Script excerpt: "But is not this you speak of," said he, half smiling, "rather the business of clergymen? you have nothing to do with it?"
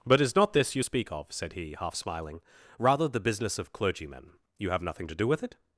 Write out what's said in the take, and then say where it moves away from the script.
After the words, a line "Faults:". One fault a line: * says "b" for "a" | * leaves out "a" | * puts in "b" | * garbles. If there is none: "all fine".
"But is not this you speak of," said he, half smiling, "rather the business of clergymen? you have nothing to do with it?"
Faults:
all fine